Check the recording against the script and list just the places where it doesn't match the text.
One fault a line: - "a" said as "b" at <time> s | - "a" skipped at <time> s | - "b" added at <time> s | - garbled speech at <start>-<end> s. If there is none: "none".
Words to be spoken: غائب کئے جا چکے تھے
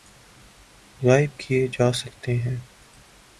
- "تھے" said as "ہیں" at 2.4 s